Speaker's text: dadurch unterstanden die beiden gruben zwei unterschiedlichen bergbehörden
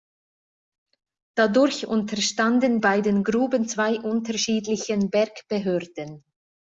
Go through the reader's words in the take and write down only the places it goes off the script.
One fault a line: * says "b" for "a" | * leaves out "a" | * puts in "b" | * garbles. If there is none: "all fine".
* leaves out "die"